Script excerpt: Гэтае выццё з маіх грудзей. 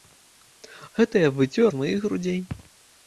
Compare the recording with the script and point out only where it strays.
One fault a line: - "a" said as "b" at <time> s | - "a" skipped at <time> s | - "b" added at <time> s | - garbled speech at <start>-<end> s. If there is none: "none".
none